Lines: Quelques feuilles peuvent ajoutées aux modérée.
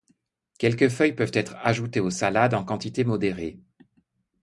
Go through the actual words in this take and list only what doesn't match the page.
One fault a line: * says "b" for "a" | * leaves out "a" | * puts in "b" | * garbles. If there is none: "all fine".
* puts in "être"
* puts in "salades en quantité"